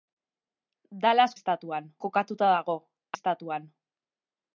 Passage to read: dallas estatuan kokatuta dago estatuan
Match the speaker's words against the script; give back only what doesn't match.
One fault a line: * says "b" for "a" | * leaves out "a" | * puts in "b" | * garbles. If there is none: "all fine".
all fine